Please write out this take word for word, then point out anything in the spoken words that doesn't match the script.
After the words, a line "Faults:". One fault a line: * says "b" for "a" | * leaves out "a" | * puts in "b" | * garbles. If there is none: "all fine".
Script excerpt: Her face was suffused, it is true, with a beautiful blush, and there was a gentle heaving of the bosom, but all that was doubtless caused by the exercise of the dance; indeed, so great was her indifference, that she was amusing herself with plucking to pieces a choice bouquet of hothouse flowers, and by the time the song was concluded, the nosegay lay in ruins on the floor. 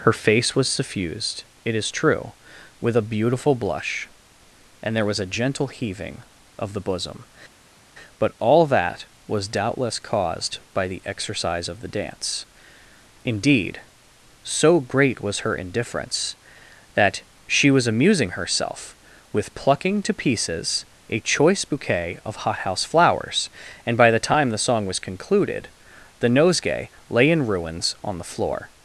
Her face was suffused, it is true, with a beautiful blush, and there was a gentle heaving of the bosom, but all that was doubtless caused by the exercise of the dance; indeed, so great was her indifference, that she was amusing herself with plucking to pieces a choice bouquet of hothouse flowers, and by the time the song was concluded, the nosegay lay in ruins on the floor.
Faults:
all fine